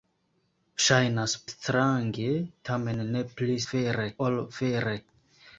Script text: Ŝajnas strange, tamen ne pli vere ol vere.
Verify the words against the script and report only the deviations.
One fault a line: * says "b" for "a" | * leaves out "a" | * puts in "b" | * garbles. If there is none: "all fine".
all fine